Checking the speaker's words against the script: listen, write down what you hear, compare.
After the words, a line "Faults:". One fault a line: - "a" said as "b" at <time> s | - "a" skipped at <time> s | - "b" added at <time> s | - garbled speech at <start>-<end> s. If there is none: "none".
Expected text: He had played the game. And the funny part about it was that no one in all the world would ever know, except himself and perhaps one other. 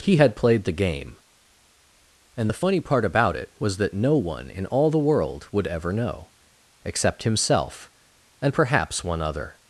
He had played the game. And the funny part about it was that no one in all the world would ever know, except himself and perhaps one other.
Faults:
none